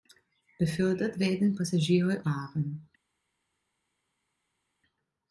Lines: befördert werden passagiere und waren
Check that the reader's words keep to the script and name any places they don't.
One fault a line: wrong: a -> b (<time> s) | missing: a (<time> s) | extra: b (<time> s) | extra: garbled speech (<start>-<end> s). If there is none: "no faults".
missing: und (2.2 s)